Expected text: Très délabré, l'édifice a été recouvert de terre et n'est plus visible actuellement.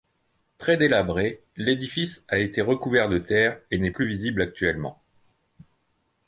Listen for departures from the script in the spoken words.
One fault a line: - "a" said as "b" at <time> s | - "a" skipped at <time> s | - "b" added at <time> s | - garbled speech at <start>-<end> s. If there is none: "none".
none